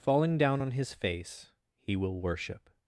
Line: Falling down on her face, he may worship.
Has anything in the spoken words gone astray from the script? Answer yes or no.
yes